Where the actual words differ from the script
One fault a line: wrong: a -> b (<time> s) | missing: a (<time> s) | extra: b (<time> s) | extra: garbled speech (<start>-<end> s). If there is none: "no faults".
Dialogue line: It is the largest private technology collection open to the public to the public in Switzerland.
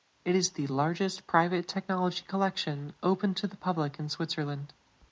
missing: to the public (4.0 s)